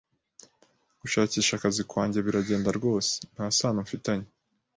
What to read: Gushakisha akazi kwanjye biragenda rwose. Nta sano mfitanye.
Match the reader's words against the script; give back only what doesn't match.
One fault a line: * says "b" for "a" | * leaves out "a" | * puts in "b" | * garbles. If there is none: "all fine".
all fine